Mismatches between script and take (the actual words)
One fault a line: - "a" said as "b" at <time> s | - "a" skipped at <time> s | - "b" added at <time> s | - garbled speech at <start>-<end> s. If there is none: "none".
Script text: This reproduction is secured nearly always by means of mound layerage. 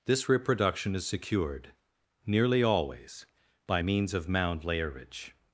none